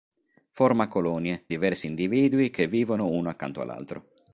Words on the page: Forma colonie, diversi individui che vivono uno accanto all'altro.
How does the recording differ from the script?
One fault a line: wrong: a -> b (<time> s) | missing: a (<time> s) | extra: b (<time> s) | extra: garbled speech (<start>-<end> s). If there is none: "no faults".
no faults